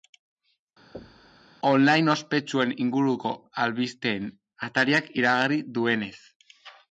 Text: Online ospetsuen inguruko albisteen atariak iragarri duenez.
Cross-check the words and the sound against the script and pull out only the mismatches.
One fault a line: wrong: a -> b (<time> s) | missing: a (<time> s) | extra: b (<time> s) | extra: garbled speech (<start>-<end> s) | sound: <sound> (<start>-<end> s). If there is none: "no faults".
sound: thud (0.9-1.5 s)